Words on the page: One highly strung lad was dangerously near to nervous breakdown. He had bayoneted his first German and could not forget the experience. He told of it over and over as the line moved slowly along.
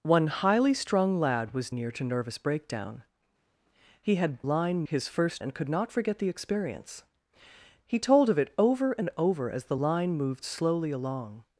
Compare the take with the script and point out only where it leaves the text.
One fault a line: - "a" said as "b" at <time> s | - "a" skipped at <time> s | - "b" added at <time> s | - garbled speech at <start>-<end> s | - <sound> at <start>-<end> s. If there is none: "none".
- "dangerously" skipped at 1.7 s
- "bayoneted" said as "line" at 4.4 s
- "German" skipped at 5.4 s